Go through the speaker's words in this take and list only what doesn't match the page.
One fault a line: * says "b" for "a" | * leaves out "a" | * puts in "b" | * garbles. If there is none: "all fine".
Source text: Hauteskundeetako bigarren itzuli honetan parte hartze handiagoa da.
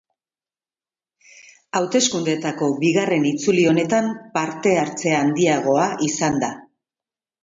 * puts in "izan"